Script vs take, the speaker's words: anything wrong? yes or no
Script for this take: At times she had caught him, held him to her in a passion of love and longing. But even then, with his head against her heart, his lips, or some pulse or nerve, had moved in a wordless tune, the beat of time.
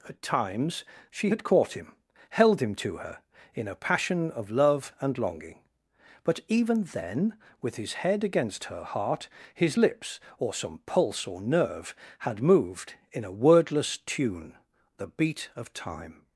no